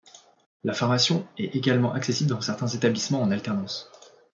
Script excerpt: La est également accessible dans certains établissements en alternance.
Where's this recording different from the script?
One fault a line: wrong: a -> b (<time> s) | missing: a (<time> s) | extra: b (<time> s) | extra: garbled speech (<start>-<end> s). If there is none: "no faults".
extra: formation (0.7 s)